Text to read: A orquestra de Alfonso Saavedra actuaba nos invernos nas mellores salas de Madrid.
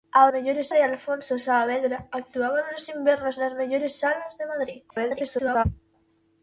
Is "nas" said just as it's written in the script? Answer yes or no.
yes